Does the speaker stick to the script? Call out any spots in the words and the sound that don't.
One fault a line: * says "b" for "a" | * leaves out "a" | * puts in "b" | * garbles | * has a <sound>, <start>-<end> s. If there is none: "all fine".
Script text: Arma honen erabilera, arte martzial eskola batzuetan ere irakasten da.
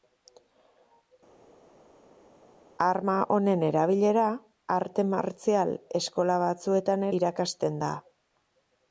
* leaves out "ere"